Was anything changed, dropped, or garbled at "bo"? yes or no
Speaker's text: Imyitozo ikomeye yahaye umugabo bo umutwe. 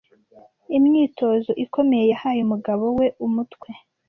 yes